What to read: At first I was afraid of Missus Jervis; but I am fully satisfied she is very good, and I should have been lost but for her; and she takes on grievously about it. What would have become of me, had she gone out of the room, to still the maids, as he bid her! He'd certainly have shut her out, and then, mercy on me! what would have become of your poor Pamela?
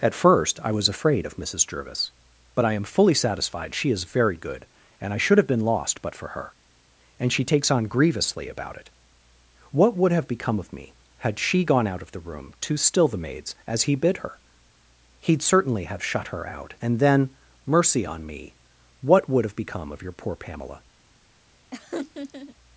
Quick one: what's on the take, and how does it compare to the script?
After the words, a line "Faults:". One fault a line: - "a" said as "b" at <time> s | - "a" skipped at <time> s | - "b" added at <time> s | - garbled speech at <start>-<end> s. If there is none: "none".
At first I was afraid of Missus Jervis; but I am fully satisfied she is very good, and I should have been lost but for her; and she takes on grievously about it. What would have become of me, had she gone out of the room, to still the maids, as he bid her! He'd certainly have shut her out, and then, mercy on me! what would have become of your poor Pamela?
Faults:
none